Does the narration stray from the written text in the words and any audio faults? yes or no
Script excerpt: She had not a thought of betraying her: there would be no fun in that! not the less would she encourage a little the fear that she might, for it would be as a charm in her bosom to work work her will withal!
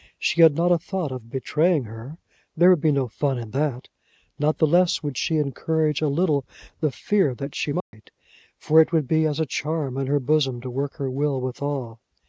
yes